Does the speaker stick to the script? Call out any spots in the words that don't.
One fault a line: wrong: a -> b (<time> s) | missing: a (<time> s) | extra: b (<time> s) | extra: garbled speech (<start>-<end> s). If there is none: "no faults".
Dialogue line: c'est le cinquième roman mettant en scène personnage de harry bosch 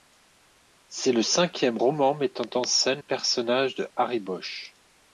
no faults